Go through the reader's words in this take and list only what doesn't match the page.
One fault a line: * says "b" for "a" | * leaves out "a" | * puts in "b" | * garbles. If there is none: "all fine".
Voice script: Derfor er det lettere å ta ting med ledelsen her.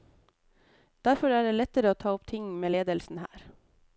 * puts in "opp"